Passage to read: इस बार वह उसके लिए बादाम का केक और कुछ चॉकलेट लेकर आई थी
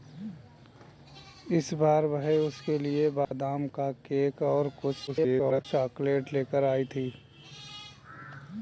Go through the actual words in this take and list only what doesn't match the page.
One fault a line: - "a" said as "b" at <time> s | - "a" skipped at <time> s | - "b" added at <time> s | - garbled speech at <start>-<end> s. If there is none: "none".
- garbled speech at 5.1-5.7 s